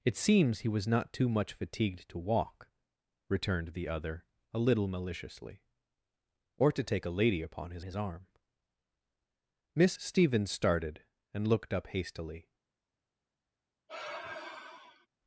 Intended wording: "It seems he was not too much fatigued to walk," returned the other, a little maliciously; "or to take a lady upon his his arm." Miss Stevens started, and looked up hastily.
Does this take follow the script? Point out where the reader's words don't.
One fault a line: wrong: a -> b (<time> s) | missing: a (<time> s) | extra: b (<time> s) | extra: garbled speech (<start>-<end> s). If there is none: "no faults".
no faults